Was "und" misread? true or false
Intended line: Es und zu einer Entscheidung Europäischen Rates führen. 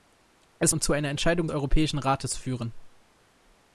false